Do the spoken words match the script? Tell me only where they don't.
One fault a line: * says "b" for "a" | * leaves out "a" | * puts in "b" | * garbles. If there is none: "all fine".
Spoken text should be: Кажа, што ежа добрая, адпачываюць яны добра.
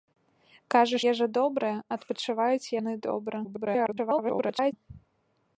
* leaves out "што"
* garbles